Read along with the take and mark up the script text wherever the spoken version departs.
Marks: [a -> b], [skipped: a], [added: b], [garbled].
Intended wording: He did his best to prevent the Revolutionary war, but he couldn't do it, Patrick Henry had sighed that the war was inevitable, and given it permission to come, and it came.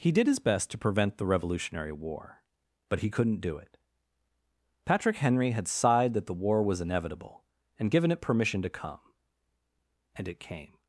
He did his best to prevent the Revolutionary war, but he couldn't do it, Patrick Henry had sighed that the war was inevitable, and given it permission to come, and it came.